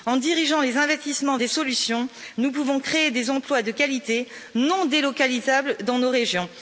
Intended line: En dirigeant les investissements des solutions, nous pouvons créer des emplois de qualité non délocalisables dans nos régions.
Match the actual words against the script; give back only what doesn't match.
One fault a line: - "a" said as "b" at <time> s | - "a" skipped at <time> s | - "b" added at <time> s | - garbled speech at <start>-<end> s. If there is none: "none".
none